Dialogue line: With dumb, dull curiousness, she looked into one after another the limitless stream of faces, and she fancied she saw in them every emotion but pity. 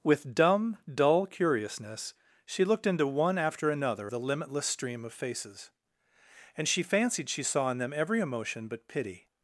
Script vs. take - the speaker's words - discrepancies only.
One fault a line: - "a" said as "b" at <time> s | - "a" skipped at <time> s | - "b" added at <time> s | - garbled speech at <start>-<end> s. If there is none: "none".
none